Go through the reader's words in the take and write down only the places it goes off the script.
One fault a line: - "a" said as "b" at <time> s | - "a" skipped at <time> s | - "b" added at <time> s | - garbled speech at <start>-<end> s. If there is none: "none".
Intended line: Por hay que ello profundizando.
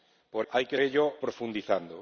none